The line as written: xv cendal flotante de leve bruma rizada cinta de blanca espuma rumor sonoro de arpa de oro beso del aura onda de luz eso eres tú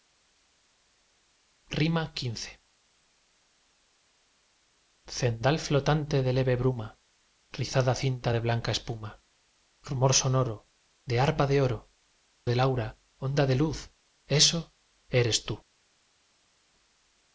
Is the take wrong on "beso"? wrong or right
wrong